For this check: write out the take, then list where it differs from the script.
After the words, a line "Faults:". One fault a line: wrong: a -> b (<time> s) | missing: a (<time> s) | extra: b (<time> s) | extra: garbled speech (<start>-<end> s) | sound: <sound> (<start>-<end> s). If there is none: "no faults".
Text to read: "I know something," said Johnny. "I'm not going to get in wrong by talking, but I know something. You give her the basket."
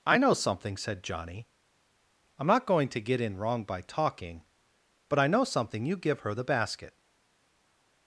"I know something," said Johnny. "I'm not going to get in wrong by talking, but I know something. You give her the basket."
Faults:
no faults